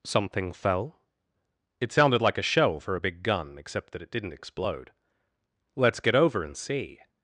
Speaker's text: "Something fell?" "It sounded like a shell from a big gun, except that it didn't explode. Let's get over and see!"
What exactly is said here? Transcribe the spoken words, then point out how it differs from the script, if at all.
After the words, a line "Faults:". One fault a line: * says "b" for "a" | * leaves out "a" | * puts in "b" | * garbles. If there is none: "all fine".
"Something fell?" "It sounded like a shell for a big gun, except that it didn't explode. Let's get over and see!"
Faults:
* says "for" for "from"